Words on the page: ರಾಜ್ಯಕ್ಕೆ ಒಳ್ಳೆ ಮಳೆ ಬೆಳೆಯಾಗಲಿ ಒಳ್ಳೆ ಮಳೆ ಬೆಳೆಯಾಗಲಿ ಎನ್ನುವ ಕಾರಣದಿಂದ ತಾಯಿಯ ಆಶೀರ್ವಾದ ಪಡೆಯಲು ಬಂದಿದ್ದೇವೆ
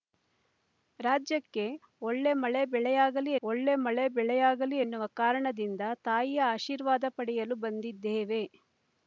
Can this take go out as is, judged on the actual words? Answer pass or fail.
pass